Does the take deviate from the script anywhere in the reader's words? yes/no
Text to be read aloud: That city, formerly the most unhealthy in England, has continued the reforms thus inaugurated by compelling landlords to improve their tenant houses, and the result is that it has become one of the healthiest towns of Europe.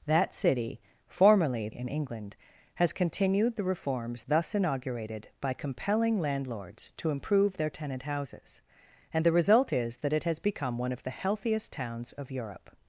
yes